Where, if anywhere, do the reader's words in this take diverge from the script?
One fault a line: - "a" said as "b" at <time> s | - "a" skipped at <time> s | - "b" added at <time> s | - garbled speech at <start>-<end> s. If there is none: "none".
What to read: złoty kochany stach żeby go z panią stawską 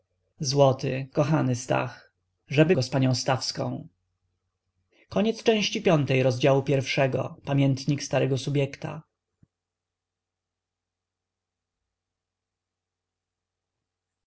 none